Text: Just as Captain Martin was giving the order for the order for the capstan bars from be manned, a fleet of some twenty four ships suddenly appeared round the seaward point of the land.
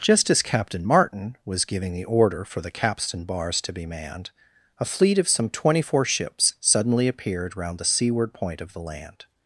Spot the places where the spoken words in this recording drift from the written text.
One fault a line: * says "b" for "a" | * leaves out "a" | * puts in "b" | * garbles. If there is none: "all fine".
* leaves out "order for the"
* says "to" for "from"